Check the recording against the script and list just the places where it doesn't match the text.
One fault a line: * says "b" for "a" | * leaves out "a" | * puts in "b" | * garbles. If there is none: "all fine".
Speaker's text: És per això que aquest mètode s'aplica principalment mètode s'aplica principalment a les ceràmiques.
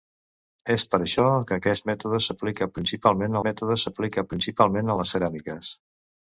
all fine